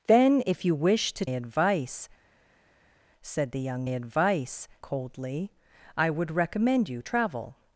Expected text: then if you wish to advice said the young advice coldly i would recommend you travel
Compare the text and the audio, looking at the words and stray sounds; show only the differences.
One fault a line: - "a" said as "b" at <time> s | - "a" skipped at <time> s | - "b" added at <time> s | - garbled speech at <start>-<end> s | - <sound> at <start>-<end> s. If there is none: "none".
none